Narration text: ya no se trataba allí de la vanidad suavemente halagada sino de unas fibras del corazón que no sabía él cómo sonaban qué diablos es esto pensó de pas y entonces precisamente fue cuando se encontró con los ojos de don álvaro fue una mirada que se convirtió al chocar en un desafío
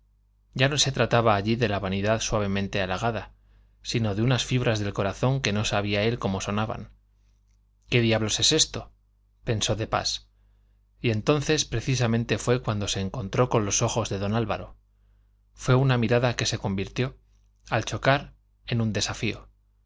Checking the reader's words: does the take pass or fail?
pass